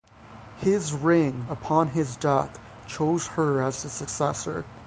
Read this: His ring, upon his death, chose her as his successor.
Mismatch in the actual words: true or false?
false